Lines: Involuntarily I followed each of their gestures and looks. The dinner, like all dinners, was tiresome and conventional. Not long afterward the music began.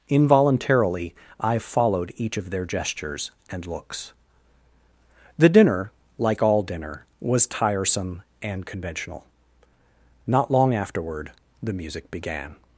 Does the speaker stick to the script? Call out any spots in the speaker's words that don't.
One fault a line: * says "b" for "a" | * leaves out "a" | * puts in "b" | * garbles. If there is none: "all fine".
* says "dinner" for "dinners"